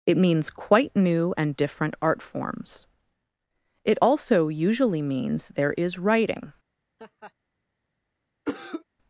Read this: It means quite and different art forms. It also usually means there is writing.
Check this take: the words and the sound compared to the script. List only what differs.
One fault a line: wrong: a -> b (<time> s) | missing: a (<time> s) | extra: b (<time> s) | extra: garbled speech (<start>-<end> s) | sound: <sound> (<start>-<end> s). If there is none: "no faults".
extra: new (0.9 s)
sound: laugh (7.0-7.3 s)
sound: cough (8.5-8.8 s)